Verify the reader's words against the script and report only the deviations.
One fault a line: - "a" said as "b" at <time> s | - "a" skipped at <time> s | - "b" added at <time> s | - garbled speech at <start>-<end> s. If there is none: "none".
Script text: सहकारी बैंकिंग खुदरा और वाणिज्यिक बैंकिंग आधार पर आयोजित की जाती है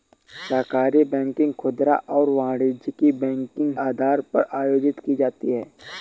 none